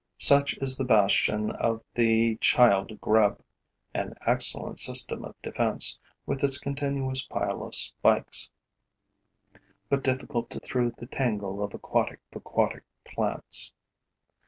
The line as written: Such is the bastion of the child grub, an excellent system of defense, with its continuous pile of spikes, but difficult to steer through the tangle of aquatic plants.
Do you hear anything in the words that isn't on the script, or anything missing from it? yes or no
yes